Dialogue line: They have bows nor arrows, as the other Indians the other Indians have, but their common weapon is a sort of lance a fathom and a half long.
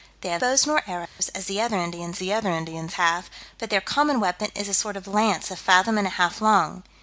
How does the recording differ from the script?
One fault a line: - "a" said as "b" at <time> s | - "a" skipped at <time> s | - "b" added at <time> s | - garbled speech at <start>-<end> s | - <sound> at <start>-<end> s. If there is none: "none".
- dropout at 1.1-1.2 s